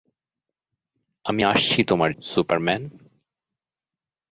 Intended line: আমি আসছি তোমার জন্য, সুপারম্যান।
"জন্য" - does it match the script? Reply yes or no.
no